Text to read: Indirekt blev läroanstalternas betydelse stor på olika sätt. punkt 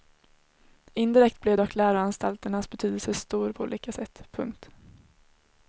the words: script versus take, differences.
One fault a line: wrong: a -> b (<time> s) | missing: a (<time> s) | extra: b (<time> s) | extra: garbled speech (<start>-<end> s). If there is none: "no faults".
extra: dock (1.6 s)